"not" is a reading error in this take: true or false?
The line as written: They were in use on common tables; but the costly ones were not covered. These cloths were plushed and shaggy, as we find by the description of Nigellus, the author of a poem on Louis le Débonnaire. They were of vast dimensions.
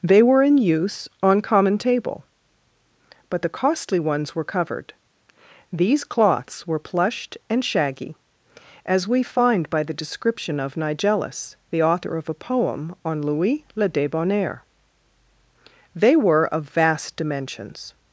true